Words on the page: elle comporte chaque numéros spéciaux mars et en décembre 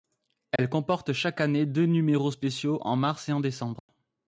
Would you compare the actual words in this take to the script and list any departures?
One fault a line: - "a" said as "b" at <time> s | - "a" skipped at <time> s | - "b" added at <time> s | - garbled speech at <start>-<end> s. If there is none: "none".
- "année deux" added at 1.4 s
- "en" added at 2.8 s